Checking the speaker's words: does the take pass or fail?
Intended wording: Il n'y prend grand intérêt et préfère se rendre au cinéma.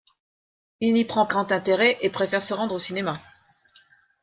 pass